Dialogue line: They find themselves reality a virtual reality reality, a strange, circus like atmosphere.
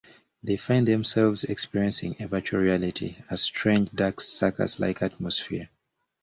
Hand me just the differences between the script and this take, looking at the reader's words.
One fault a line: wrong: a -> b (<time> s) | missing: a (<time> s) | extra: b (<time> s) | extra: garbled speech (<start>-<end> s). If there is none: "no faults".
wrong: reality -> experiencing (1.4 s)
missing: reality (3.2 s)
extra: dark (3.9 s)